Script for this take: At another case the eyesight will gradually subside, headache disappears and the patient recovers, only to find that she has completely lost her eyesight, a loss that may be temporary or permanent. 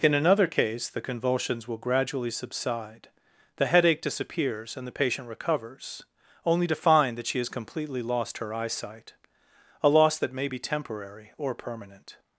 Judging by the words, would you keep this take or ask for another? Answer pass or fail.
fail